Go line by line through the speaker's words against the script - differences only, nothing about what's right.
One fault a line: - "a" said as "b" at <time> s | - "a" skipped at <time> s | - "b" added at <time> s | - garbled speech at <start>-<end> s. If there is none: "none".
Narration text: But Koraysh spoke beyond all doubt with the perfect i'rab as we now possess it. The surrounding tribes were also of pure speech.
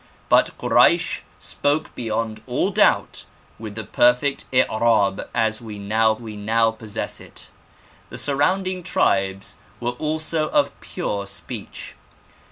- "we now" added at 6.2 s